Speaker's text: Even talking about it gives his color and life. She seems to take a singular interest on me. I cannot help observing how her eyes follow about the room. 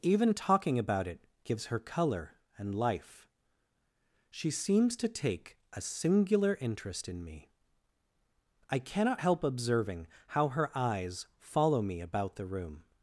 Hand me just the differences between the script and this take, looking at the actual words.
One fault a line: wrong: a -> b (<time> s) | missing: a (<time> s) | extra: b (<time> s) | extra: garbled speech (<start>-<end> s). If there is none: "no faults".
wrong: his -> her (1.7 s)
wrong: on -> in (7.1 s)
extra: me (11.8 s)